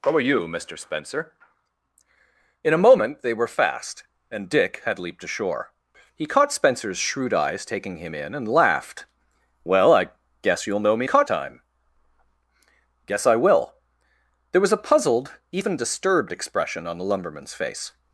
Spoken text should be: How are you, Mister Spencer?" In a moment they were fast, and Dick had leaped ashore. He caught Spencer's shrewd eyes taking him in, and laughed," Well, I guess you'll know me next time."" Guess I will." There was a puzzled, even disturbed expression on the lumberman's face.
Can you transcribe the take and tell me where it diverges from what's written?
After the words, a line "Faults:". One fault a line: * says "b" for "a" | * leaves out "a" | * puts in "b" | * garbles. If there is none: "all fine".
How are you, Mister Spencer?" In a moment they were fast, and Dick had leaped ashore. He caught Spencer's shrewd eyes taking him in, and laughed," Well, I guess you'll know me caught time."" Guess I will." There was a puzzled, even disturbed expression on the lumberman's face.
Faults:
* says "caught" for "next"